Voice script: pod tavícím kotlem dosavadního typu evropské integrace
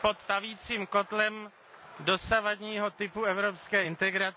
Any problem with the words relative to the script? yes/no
no